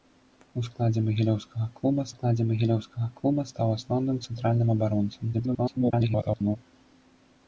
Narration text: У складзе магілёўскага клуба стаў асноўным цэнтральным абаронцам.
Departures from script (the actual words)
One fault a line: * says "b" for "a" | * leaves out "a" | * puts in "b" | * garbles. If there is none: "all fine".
* puts in "складзе магілёўскага клуба"
* garbles